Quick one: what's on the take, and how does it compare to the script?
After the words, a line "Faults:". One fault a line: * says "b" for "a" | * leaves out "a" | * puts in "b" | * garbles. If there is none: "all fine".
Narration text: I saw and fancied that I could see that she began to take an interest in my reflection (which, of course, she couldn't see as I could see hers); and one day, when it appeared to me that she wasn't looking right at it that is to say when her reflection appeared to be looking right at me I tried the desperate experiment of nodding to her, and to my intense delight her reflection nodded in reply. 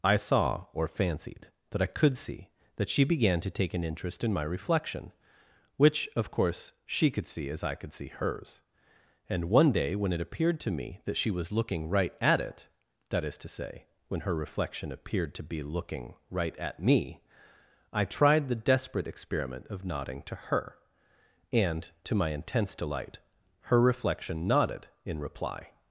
I saw or fancied that I could see that she began to take an interest in my reflection (which, of course, she could see as I could see hers); and one day, when it appeared to me that she was looking right at it that is to say when her reflection appeared to be looking right at me I tried the desperate experiment of nodding to her, and to my intense delight her reflection nodded in reply.
Faults:
* says "or" for "and"
* says "could" for "couldn't"
* says "was" for "wasn't"